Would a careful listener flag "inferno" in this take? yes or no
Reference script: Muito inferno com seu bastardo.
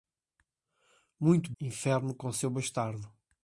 no